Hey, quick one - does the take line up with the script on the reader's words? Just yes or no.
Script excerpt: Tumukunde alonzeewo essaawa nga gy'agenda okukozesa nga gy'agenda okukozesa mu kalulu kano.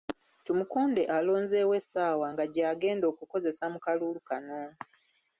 no